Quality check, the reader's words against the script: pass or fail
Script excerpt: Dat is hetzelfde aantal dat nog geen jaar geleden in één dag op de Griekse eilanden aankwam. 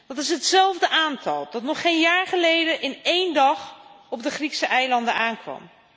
pass